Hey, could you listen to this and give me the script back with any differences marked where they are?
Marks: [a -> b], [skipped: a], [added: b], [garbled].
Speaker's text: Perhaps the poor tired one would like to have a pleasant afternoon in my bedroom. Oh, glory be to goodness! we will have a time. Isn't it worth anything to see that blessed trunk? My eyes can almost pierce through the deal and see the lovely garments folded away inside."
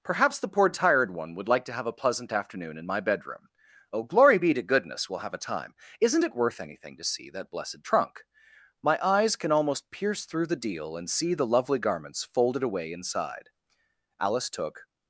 Perhaps the poor tired one would like to have a pleasant afternoon in my bedroom. Oh, glory be to goodness! we will have a time. Isn't it worth anything to see that blessed trunk? My eyes can almost pierce through the deal and see the lovely garments folded away inside." [added: Alice took]